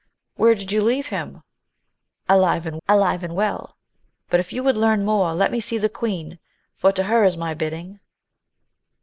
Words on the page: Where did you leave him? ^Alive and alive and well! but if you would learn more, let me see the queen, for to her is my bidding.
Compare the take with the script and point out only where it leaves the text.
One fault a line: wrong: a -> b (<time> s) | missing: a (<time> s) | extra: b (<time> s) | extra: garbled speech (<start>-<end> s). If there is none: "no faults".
no faults